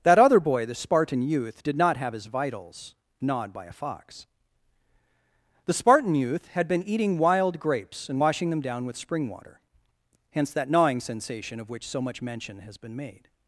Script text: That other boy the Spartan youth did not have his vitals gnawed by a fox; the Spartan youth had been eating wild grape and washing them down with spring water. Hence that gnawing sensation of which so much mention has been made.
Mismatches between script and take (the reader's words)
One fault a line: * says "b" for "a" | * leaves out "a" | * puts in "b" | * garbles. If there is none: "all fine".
* says "grapes" for "grape"